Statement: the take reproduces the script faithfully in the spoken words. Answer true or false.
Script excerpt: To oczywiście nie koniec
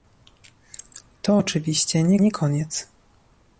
false